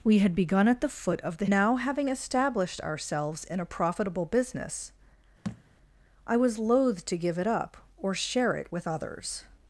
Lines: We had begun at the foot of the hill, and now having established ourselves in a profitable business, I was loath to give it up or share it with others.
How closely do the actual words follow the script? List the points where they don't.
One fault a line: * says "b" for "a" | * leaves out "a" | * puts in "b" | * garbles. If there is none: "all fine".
* leaves out "hill and"